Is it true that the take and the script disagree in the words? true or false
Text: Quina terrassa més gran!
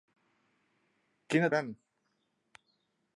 true